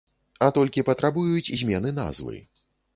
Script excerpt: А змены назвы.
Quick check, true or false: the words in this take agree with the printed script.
false